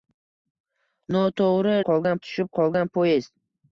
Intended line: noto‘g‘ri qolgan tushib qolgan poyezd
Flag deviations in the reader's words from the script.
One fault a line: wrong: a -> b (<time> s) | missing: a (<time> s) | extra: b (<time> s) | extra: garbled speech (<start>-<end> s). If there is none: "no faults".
no faults